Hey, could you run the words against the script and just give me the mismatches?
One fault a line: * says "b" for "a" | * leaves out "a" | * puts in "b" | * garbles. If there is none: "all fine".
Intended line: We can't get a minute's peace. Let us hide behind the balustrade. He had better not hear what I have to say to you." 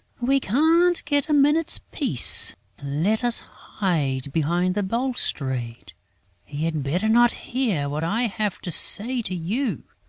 all fine